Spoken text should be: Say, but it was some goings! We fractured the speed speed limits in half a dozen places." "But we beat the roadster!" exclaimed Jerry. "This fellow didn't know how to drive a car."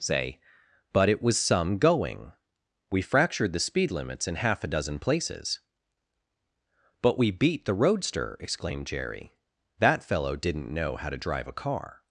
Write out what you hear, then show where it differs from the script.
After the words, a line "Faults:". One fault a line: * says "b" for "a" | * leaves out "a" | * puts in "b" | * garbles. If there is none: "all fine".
Say, but it was some going! We fractured the speed limits in half a dozen places." "But we beat the roadster!" exclaimed Jerry. "That fellow didn't know how to drive a car."
Faults:
* says "going" for "goings"
* leaves out "speed"
* says "That" for "This"